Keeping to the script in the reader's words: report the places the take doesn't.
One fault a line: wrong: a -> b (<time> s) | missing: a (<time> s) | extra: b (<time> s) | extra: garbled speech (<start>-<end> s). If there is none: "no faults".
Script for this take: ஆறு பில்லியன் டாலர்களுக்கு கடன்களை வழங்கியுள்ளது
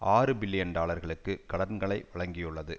no faults